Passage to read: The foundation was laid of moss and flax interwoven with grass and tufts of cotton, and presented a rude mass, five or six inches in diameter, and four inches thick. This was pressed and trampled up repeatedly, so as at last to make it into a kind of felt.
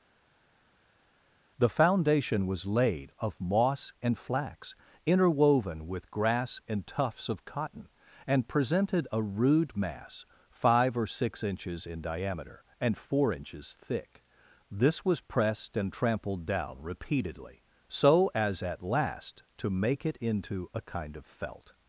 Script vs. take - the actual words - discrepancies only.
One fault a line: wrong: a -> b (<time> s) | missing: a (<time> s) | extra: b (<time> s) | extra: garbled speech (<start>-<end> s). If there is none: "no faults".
wrong: up -> down (16.4 s)